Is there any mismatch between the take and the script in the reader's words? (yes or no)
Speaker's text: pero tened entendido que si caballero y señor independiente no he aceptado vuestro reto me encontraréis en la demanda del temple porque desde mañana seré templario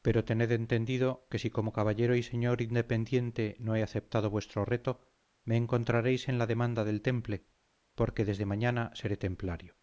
yes